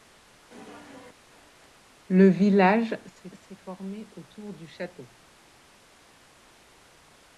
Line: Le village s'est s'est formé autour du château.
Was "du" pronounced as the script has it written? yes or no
yes